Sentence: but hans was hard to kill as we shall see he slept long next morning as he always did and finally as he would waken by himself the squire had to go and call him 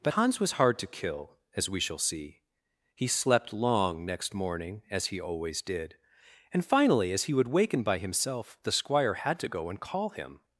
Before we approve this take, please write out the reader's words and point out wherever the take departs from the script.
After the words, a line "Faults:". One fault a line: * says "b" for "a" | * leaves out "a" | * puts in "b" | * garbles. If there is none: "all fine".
but hans was hard to kill as we shall see he slept long next morning as he always did and finally as he would waken by himself the squire had to go and call him
Faults:
all fine